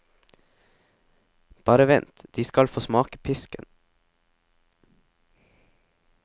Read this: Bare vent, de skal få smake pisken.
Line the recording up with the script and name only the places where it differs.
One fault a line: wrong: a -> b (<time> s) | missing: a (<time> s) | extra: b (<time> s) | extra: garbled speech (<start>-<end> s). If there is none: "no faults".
no faults